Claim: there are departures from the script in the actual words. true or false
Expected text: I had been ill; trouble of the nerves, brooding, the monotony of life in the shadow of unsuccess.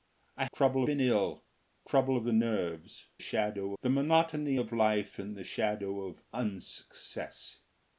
true